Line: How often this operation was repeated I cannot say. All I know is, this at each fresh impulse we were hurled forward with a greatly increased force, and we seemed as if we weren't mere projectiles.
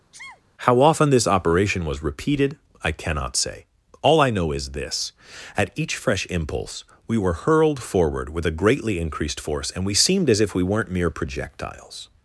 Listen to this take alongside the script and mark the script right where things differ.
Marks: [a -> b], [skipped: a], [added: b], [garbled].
How often this operation was repeated I cannot say. All I know is, this at each fresh impulse we were hurled forward with a greatly increased force, and we seemed as if we weren't mere projectiles.